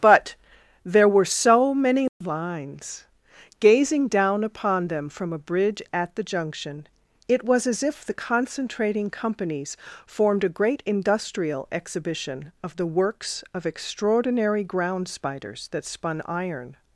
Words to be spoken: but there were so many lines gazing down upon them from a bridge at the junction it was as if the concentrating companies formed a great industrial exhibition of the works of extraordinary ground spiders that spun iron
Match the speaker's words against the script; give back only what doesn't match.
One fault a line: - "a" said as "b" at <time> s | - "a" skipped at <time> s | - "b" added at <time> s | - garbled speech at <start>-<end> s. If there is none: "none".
none